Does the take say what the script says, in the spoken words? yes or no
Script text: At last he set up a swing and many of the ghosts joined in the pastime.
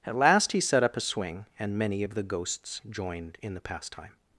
yes